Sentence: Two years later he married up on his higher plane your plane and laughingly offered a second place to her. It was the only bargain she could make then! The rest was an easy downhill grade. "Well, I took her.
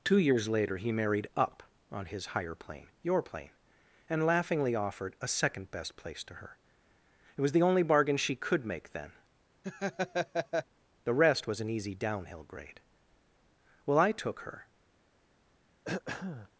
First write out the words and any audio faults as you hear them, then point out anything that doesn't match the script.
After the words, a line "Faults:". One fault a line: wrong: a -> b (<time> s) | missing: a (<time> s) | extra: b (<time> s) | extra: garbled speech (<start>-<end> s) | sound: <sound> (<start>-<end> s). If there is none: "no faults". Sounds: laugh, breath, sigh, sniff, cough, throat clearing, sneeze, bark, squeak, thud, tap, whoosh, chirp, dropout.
Two years later he married up on his higher plane your plane and laughingly offered a second best place to her. It was the only bargain she could make then! The rest was an easy downhill grade. "Well, I took her.
Faults:
extra: best (5.7 s)
sound: laugh (9.6-10.7 s)
sound: throat clearing (15.8-16.5 s)